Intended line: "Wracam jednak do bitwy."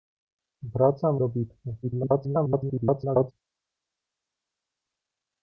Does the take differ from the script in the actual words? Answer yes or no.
yes